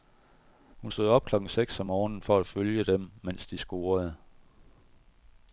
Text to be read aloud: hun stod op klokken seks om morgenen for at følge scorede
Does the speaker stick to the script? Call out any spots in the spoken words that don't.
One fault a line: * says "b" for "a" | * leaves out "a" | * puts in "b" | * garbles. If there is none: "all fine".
* puts in "dem mens de"